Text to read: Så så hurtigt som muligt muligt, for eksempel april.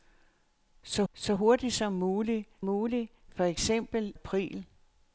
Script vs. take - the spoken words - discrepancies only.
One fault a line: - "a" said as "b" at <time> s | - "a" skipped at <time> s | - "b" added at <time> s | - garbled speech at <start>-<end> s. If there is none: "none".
none